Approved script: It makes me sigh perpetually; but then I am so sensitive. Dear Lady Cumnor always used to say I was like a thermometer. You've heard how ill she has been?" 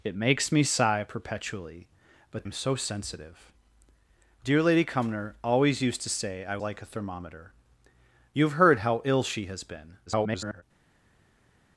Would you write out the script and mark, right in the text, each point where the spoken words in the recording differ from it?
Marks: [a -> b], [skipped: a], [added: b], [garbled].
It makes me sigh perpetually; but [skipped: then I] am so sensitive. Dear Lady Cumnor always used to say I [skipped: was] like a thermometer. You've heard how ill she has been?" [garbled]